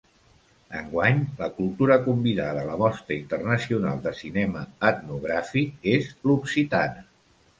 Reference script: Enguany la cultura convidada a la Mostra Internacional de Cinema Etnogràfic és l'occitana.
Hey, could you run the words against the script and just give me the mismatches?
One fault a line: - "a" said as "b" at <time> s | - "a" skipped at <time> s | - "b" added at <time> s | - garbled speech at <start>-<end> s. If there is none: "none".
none